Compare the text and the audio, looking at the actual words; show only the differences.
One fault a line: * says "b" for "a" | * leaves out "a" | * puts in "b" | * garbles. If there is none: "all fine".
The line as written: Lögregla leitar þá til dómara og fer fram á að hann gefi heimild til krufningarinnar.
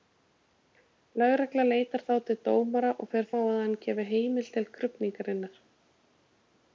* leaves out "fram"